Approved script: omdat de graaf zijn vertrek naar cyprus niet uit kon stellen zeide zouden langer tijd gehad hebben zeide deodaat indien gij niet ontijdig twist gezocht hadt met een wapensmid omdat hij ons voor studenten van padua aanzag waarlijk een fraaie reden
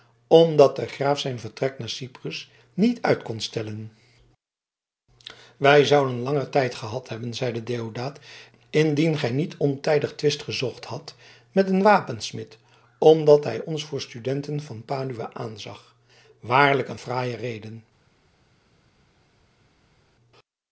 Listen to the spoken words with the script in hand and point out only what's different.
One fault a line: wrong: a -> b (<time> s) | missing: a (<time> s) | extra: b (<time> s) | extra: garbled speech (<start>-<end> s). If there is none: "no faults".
wrong: zeide -> wij (5.6 s)